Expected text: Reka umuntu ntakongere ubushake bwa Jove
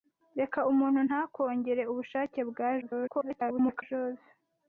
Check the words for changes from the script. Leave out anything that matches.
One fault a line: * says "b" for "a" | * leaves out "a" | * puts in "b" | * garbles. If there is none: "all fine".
* garbles